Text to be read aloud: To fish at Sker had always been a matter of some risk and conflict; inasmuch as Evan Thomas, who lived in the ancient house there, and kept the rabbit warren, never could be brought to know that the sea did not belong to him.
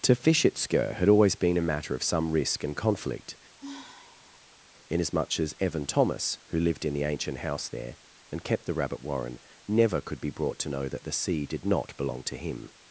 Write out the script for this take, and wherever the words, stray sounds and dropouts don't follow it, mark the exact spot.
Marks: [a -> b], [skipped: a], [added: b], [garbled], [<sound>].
To fish at Sker had always been a matter of some risk and conflict; [sigh] inasmuch as Evan Thomas, who lived in the ancient house there, and kept the rabbit warren, never could be brought to know that the sea did not belong to him.